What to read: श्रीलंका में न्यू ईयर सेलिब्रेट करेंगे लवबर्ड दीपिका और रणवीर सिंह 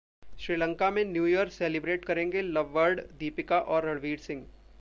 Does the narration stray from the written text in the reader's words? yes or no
no